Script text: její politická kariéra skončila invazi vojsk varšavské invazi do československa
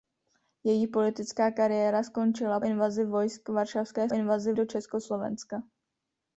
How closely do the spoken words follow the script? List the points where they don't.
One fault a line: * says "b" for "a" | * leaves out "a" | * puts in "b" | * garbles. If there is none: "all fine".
all fine